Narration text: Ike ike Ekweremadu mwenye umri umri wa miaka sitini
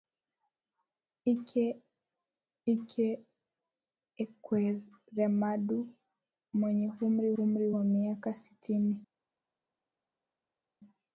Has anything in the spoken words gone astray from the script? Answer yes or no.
no